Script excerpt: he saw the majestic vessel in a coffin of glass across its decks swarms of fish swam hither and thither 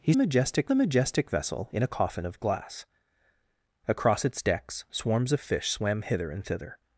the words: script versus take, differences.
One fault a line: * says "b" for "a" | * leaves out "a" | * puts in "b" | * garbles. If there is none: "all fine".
* says "majestic" for "saw"